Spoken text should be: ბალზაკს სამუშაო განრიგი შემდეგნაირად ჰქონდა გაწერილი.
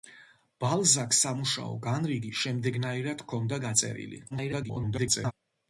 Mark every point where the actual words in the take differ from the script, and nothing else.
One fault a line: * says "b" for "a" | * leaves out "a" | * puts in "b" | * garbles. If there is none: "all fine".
* garbles